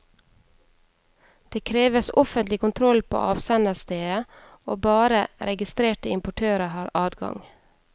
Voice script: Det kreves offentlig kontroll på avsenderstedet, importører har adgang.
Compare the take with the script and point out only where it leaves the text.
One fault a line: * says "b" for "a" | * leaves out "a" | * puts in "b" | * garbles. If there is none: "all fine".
* puts in "og bare registrerte"